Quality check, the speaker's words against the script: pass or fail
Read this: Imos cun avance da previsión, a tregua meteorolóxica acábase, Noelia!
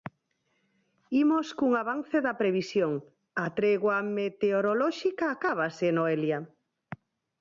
pass